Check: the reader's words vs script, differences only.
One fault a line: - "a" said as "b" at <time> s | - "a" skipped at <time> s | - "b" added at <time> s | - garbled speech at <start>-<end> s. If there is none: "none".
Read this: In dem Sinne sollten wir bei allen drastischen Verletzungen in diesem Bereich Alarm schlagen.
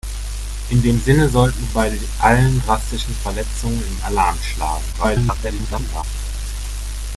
- "wir" skipped at 1.7 s
- "diesem Bereich" skipped at 4.0 s
- garbled speech at 4.9-6.0 s